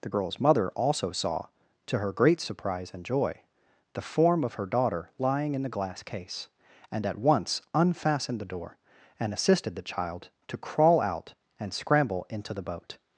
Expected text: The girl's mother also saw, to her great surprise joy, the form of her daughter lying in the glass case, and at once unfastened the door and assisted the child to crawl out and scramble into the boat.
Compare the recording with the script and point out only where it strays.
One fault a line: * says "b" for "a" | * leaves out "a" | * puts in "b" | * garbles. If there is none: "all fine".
* puts in "and"